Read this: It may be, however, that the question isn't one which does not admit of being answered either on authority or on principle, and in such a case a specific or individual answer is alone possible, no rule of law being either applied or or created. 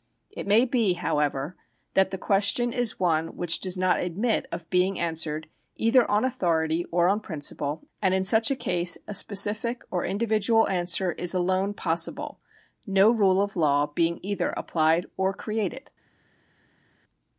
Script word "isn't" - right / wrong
wrong